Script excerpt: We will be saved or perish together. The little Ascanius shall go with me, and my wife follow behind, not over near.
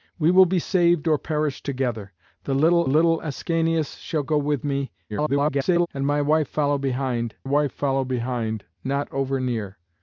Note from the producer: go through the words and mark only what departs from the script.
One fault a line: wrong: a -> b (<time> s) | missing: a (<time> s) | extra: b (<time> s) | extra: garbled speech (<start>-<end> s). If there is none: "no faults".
extra: little (2.9 s)
extra: garbled speech (5.1-5.9 s)
extra: wife follow behind (7.4 s)